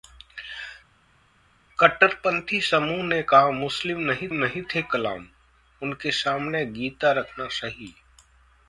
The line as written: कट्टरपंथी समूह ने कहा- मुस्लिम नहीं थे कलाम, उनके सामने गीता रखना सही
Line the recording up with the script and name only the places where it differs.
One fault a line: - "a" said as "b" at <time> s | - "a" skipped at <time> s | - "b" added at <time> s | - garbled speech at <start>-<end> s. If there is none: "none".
- "नहीं" added at 4.3 s